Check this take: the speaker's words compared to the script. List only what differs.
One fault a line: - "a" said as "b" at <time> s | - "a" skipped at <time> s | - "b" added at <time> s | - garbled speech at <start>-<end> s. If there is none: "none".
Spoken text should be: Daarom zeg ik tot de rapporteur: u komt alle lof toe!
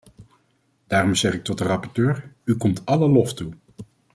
none